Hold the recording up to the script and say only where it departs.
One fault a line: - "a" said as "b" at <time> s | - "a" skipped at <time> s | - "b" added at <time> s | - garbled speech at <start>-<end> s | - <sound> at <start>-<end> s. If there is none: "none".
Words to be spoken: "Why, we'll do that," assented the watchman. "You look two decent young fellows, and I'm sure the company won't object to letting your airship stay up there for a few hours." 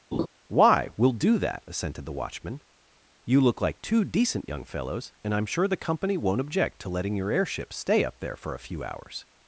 - laugh at 0.1-0.3 s
- "like" added at 3.6 s